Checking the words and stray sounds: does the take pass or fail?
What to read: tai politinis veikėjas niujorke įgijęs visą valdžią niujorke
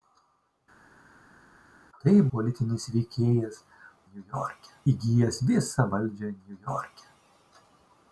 pass